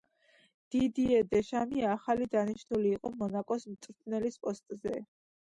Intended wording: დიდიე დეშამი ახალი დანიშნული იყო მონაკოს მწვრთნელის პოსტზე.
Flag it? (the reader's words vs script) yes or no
no